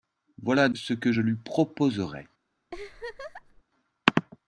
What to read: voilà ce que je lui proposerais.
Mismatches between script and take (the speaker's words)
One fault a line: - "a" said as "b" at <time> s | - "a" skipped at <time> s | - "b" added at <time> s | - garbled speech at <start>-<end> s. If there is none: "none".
none